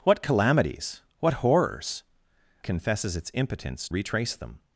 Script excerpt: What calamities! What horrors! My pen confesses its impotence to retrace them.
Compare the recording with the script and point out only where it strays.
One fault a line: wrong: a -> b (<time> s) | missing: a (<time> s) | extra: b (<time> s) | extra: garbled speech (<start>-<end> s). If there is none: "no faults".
missing: My pen (2.0 s)
missing: to (3.9 s)